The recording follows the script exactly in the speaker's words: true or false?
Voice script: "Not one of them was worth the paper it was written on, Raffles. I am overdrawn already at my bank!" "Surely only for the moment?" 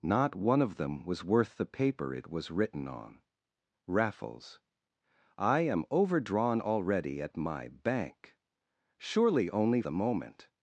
false